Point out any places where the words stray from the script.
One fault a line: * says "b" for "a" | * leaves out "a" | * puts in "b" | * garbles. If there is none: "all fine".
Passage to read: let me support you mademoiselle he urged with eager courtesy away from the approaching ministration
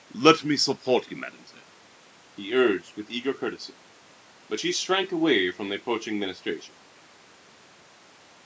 * puts in "but she shrank"